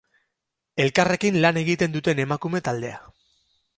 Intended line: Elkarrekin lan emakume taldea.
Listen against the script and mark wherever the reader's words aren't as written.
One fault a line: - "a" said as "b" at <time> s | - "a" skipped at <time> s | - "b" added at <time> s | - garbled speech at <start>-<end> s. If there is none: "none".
- "egiten duten" added at 1.6 s